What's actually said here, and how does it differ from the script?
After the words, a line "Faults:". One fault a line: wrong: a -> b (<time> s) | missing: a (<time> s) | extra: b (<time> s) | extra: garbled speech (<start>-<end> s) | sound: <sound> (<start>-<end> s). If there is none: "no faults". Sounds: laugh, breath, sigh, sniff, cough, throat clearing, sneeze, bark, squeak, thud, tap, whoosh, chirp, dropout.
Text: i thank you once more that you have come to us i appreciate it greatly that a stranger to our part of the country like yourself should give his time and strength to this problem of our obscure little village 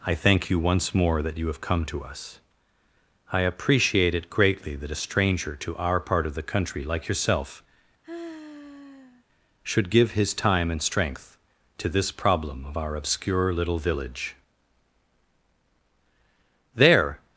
i thank you once more that you have come to us i appreciate it greatly that a stranger to our part of the country like yourself should give his time and strength to this problem of our obscure little village there
Faults:
sound: sigh (8.0-9.2 s)
extra: there (16.7 s)